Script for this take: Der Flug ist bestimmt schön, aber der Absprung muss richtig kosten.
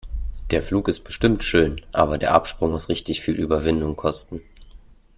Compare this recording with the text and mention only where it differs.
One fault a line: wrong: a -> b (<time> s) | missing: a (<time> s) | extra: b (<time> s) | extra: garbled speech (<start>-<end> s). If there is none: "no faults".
extra: viel Überwindung (3.2 s)